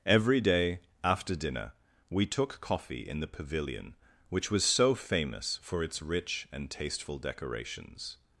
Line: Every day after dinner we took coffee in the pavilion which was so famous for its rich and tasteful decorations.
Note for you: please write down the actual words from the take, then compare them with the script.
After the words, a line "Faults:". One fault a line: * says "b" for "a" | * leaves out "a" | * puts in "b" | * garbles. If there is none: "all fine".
Every day after dinner we took coffee in the pavilion which was so famous for its rich and tasteful decorations.
Faults:
all fine